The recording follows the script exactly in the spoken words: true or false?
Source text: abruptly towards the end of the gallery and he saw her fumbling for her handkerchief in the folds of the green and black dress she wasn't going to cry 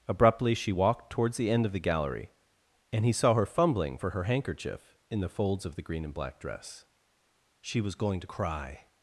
false